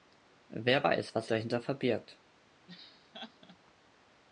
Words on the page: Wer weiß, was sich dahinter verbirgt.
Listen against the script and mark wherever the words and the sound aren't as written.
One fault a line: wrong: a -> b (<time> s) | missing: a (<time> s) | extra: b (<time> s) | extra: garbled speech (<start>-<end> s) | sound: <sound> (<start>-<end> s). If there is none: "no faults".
missing: sich (1.3 s)
sound: laugh (2.7-3.6 s)